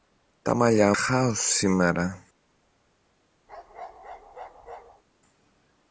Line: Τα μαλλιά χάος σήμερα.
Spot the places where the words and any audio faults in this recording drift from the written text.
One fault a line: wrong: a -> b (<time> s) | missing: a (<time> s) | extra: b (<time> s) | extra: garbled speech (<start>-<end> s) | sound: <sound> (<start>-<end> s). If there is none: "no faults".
sound: bark (3.5-5.0 s)